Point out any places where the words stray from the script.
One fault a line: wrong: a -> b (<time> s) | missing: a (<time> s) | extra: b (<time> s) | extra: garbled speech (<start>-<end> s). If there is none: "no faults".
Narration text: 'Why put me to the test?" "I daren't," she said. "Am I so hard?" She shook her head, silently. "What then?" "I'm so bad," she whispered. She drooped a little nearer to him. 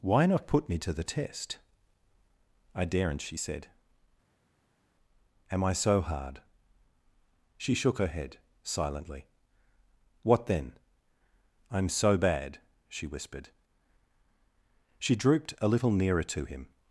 extra: not (0.2 s)